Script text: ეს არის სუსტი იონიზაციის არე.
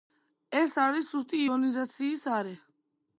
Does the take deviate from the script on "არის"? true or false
false